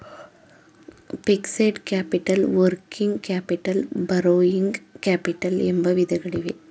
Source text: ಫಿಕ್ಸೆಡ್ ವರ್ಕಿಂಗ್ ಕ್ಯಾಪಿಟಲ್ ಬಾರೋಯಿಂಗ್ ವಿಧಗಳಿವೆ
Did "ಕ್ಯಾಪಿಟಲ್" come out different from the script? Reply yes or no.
no